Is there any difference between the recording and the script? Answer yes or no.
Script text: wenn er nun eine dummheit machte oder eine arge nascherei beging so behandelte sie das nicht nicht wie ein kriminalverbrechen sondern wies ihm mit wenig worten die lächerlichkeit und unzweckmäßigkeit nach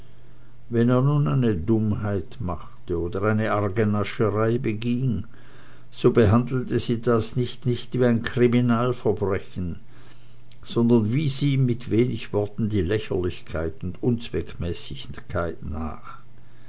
no